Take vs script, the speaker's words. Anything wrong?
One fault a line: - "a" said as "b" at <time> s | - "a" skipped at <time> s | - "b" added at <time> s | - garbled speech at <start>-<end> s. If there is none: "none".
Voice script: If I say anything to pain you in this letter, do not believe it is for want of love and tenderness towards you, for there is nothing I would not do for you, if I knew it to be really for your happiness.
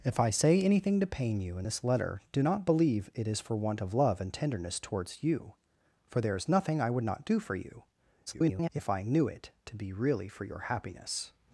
- garbled speech at 8.3-8.7 s